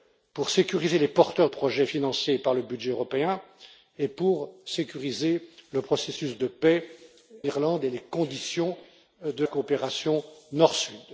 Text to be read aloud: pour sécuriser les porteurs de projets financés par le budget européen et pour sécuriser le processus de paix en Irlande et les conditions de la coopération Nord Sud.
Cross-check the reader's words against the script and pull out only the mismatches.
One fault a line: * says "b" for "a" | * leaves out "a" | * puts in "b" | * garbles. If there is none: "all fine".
* leaves out "de"
* leaves out "en"
* leaves out "la"